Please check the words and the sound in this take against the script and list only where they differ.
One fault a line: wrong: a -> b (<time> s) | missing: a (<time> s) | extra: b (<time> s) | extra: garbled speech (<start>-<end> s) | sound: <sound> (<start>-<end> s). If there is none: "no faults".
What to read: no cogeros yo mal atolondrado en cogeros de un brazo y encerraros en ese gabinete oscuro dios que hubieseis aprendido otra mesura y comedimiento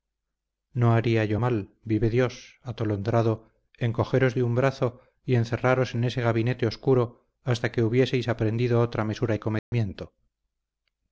wrong: cogeros -> haría (0.9 s)
extra: vive dios (1.8 s)
wrong: dios -> hasta (7.4 s)
sound: dropout (9.6-9.7 s)